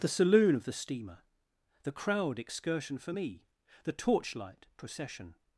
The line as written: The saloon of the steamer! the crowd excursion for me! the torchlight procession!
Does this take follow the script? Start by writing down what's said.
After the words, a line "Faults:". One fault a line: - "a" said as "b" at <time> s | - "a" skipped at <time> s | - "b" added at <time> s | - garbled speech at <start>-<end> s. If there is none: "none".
The saloon of the steamer! the crowd excursion for me! the torchlight procession!
Faults:
none